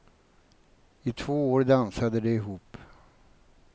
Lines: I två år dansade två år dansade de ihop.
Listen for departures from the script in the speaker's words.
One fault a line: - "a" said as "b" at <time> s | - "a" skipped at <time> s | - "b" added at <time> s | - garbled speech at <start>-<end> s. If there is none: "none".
- "två år dansade" skipped at 2.2 s